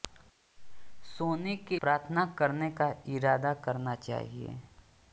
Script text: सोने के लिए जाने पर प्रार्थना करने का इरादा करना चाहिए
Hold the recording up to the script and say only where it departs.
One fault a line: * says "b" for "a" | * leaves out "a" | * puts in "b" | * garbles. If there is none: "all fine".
* leaves out "लिए जाने पर"